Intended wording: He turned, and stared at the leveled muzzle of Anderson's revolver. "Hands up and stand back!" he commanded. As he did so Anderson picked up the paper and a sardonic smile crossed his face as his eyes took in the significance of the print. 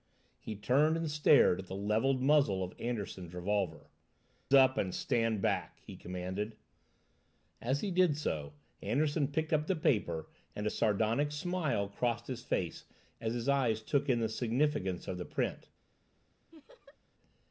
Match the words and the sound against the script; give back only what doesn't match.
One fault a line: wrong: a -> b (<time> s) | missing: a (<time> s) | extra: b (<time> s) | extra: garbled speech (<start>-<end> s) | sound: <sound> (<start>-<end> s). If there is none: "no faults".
missing: Hands (3.9 s)
sound: laugh (16.5-17.0 s)